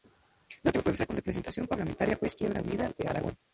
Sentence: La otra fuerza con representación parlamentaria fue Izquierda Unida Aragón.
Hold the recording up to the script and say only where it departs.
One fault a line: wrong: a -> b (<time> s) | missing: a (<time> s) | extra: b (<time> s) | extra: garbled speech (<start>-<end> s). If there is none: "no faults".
extra: de (3.0 s)